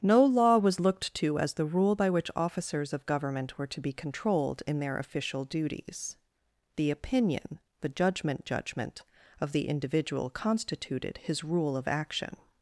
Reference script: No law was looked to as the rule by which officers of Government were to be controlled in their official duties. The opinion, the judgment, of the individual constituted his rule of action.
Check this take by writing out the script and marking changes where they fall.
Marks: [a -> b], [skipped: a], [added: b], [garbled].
No law was looked to as the rule by which officers of Government were to be controlled in their official duties. The opinion, the judgment, [added: judgment] of the individual constituted his rule of action.